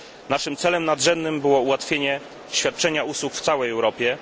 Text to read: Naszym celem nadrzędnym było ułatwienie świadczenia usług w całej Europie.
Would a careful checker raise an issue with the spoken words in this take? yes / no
no